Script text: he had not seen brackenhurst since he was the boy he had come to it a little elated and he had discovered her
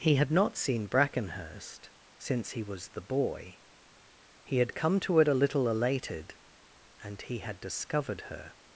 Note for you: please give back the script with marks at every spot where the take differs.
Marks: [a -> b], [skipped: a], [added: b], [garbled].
he had not seen brackenhurst since he was the boy he had come to it a little elated and he had discovered her